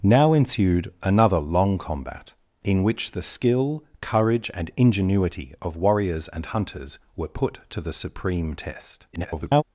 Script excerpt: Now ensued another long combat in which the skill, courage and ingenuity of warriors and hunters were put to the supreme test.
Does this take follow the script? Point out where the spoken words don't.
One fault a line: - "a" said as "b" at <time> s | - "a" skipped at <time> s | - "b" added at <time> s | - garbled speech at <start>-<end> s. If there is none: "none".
- garbled speech at 9.1-9.6 s